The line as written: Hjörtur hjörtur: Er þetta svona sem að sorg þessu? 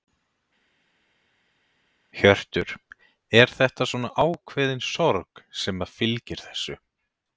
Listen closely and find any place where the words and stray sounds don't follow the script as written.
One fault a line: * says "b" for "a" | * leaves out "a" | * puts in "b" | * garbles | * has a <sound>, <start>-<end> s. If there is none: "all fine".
* leaves out "hjörtur"
* puts in "ákveðin sorg"
* says "fylgir" for "sorg"